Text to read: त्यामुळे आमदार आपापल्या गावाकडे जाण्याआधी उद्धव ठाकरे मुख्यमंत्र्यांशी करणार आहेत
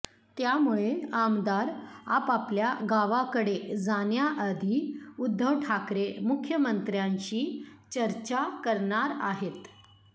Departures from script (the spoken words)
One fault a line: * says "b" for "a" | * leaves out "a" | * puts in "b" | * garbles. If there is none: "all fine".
* puts in "चर्चा"